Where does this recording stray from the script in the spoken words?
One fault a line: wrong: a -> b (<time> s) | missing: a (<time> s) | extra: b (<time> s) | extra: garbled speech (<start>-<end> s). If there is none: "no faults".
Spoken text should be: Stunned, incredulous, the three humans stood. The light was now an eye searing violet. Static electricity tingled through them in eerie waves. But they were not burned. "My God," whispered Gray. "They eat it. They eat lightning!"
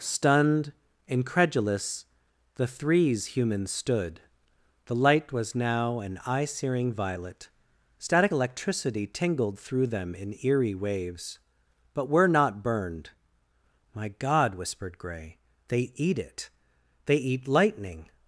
wrong: three -> threes (2.7 s)
missing: they (12.1 s)